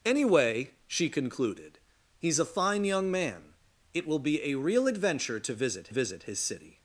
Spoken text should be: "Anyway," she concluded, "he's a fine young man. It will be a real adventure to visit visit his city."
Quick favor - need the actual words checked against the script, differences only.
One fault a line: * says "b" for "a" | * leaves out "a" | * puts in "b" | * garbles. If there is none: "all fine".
all fine